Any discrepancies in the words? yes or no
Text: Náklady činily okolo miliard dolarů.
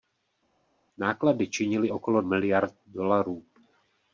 no